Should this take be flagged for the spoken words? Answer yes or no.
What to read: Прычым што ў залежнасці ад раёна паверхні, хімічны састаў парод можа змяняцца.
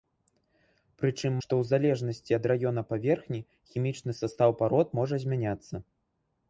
no